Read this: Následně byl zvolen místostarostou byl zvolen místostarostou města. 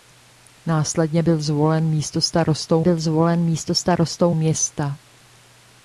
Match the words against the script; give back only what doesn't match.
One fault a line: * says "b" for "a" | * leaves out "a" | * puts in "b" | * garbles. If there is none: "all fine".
all fine